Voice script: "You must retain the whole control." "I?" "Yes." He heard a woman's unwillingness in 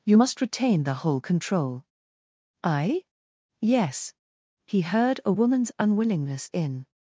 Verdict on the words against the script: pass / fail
pass